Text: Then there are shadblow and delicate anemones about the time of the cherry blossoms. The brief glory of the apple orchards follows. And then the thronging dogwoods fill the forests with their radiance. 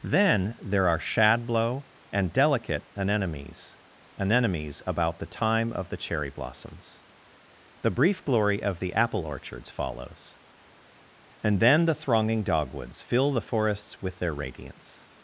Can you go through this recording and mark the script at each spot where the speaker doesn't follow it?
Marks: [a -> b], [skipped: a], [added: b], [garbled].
Then there are shadblow and delicate anemones [added: anemones] about the time of the cherry blossoms. The brief glory of the apple orchards follows. And then the thronging dogwoods fill the forests with their radiance.